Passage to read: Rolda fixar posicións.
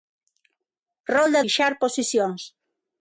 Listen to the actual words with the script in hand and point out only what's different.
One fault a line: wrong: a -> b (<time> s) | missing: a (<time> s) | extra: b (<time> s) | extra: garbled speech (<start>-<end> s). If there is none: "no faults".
no faults